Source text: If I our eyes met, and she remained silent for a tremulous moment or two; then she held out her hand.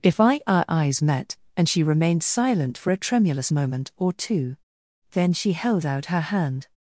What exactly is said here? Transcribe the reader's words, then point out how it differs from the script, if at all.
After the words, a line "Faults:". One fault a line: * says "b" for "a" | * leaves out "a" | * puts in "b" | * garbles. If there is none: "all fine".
If I our eyes met, and she remained silent for a tremulous moment or two; then she held out her hand.
Faults:
all fine